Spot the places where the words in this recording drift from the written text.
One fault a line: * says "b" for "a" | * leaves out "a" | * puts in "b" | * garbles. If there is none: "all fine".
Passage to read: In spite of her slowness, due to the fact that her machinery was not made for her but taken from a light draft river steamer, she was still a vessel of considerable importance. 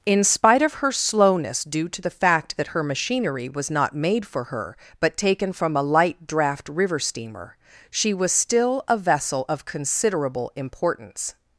all fine